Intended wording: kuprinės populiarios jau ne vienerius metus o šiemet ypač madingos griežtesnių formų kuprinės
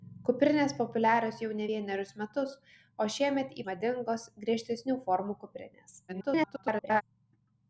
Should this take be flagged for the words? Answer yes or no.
yes